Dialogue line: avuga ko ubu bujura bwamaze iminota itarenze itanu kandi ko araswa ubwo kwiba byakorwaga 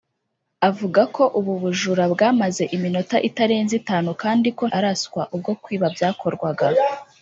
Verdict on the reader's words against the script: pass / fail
pass